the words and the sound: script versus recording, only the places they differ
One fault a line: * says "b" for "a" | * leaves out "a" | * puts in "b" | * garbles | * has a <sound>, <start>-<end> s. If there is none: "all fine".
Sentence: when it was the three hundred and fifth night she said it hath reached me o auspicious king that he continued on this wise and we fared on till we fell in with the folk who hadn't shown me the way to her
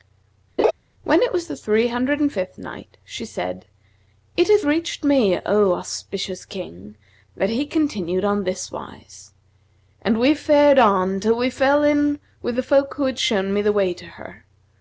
* has a laugh, 0.6-0.7 s
* says "had" for "hadn't"